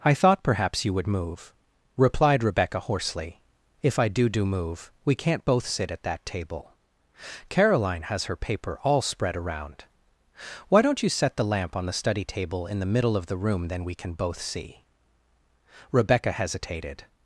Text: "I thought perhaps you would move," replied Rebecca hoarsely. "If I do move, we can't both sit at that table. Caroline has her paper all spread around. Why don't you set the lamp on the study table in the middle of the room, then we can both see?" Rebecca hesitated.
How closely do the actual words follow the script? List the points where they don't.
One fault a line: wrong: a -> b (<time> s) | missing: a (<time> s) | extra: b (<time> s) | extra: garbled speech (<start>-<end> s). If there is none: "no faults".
extra: do (4.3 s)